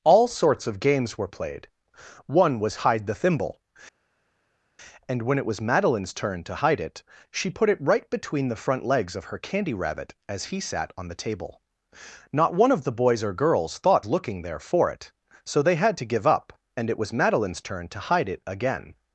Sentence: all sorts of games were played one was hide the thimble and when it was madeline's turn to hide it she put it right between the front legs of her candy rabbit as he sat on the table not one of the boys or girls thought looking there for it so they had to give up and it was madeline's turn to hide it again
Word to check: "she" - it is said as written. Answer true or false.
true